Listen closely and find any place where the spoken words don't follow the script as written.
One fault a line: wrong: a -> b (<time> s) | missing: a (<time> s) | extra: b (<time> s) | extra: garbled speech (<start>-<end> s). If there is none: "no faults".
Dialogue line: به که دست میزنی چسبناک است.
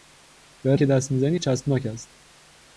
no faults